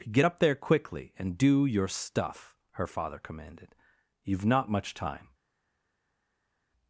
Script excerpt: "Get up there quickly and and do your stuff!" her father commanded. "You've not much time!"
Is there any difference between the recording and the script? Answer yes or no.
yes